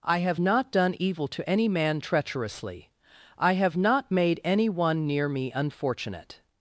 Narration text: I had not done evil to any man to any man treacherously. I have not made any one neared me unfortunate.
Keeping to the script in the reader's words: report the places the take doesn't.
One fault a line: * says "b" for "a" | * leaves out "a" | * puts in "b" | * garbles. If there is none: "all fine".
* says "have" for "had"
* leaves out "to any man"
* says "near" for "neared"